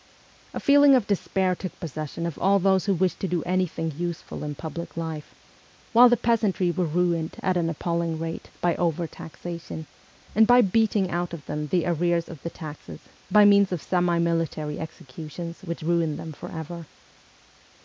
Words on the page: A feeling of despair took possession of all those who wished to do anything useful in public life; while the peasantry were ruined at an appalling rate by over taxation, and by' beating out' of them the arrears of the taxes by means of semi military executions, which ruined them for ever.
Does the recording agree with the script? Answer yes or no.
yes